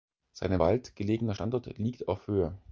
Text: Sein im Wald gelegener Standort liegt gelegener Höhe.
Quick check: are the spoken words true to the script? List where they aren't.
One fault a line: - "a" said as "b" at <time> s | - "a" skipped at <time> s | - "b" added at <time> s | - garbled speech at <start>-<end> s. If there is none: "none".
- "gelegener" said as "auf" at 2.1 s